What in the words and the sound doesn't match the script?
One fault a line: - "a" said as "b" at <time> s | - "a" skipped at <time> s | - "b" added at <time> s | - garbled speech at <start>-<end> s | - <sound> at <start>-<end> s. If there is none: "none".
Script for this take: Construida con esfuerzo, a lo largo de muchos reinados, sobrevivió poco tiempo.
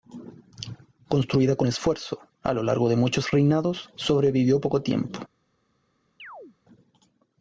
- chirp at 6.2-6.6 s